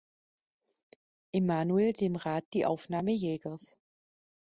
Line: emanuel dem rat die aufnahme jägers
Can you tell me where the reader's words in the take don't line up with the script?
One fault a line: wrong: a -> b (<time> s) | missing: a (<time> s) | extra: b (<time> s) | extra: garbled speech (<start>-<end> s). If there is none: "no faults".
no faults